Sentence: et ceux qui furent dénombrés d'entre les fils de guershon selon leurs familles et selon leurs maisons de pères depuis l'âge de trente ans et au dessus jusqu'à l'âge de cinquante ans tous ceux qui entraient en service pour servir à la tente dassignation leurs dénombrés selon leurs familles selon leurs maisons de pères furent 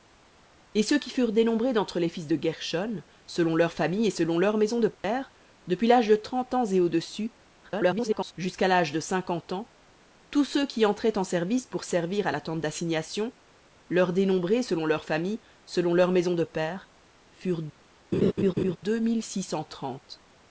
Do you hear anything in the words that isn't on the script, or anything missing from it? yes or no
yes